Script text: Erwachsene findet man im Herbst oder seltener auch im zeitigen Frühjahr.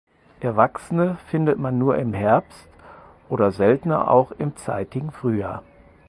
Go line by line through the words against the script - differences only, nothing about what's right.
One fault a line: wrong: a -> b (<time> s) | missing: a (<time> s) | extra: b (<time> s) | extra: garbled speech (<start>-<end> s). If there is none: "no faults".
extra: nur (1.8 s)